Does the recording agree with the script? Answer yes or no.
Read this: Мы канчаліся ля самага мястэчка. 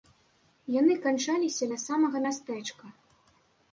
no